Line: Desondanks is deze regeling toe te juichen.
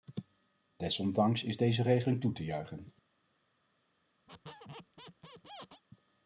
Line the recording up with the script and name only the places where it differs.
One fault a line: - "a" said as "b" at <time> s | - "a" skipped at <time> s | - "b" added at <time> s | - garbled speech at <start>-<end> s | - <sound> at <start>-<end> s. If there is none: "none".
- squeak at 4.3-5.8 s